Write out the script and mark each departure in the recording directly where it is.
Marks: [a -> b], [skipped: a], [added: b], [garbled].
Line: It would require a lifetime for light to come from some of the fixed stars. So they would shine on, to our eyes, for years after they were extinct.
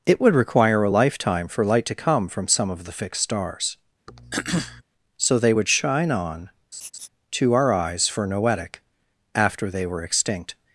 It would require a lifetime for light to come from some of the fixed stars. So they would shine on, to our eyes, for [years -> noetic] after they were extinct.